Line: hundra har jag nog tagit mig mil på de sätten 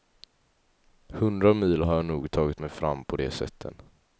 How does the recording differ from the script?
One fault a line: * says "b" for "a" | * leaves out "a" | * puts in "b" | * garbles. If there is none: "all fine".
* puts in "mil"
* says "fram" for "mil"